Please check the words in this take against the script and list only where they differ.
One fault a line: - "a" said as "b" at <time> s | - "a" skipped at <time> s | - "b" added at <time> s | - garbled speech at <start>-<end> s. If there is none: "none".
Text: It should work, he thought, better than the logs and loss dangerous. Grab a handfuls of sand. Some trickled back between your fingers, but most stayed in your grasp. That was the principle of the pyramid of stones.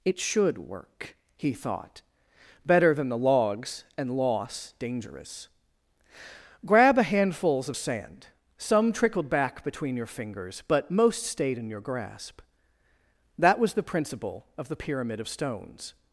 none